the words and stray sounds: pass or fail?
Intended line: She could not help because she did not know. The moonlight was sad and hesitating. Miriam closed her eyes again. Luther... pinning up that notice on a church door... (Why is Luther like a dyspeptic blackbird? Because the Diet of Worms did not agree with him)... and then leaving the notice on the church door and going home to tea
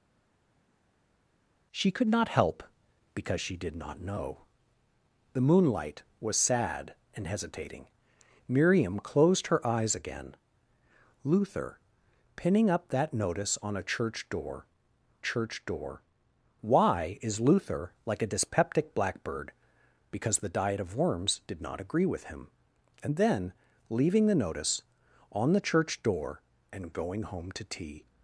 fail